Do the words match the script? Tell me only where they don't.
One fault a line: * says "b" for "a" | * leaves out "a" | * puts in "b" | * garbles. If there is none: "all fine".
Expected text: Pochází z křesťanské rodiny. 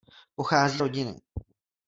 * leaves out "z křesťanské"